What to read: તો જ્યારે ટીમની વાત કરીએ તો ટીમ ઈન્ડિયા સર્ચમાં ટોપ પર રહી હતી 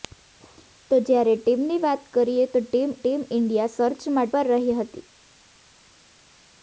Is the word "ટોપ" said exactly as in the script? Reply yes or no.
no